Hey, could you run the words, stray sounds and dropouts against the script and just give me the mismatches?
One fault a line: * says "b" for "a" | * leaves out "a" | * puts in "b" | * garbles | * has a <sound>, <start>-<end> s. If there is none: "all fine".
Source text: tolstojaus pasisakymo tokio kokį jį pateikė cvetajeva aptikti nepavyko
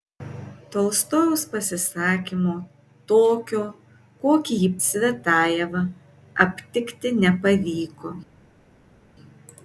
* leaves out "pateikė"